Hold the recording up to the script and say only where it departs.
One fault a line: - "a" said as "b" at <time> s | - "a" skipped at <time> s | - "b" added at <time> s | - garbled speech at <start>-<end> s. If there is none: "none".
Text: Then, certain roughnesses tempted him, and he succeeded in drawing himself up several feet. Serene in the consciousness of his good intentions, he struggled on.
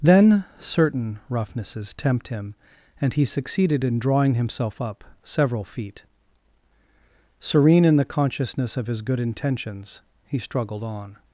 - "tempted" said as "tempt" at 1.9 s